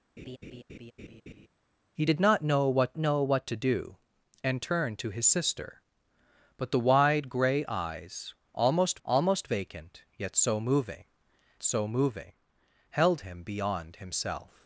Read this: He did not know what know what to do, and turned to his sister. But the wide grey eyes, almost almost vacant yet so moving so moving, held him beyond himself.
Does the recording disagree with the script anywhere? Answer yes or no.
no